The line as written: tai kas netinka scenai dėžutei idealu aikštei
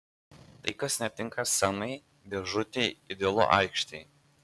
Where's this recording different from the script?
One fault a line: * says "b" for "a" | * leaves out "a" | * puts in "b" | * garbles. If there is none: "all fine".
all fine